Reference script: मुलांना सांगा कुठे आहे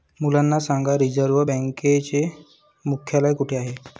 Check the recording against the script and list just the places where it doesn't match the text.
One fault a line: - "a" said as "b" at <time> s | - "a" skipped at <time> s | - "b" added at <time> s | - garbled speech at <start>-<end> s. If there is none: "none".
- "रिझर्व्ह बँकेचे मुख्यालय" added at 1.0 s